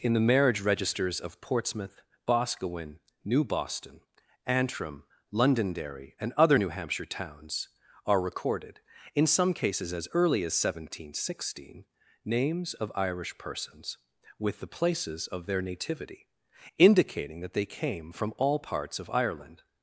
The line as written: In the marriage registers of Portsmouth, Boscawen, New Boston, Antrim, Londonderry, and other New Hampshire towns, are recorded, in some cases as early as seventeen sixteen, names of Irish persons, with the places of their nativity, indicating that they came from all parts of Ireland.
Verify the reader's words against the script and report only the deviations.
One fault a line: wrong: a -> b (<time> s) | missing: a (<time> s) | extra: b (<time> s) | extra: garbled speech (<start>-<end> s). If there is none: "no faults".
no faults